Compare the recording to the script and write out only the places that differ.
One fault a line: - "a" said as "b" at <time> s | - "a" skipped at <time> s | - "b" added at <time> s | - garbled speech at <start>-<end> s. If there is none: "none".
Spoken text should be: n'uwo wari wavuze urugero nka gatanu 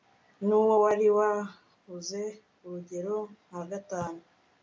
none